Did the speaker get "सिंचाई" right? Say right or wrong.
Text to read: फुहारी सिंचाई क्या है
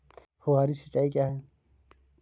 right